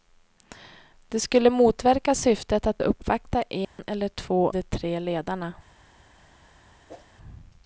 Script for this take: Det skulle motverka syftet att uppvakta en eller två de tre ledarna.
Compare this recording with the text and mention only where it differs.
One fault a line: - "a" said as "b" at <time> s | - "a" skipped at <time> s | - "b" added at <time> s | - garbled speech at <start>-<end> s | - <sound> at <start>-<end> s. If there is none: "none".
- dropout at 3.6-3.8 s
- whoosh at 6.9-7.1 s